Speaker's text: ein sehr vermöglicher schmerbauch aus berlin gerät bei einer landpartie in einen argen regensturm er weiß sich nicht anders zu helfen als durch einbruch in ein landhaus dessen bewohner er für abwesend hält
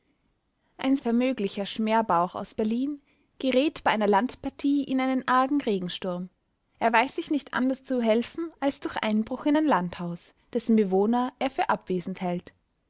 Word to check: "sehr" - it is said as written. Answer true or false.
false